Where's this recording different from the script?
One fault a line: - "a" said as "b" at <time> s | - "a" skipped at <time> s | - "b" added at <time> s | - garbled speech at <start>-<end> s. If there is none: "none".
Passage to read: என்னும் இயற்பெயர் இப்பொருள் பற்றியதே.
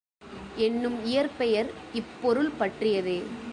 none